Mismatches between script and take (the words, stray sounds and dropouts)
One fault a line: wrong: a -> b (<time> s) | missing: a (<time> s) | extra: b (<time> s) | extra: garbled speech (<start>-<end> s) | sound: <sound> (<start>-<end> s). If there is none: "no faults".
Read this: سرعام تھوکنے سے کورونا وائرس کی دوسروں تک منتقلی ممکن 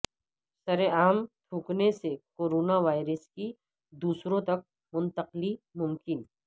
no faults